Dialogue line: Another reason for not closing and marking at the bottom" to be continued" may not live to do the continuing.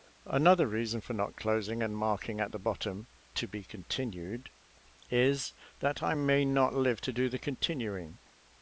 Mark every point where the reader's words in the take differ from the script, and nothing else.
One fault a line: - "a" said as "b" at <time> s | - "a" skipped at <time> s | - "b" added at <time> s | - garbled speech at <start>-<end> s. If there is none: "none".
- "is that I" added at 5.1 s